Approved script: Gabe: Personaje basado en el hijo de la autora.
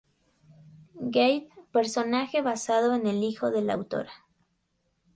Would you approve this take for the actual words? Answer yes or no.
yes